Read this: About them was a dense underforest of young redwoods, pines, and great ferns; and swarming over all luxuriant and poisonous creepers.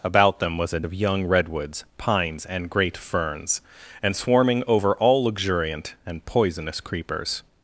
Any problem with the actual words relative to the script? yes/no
yes